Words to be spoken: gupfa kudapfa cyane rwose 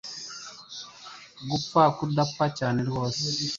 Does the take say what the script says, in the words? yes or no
yes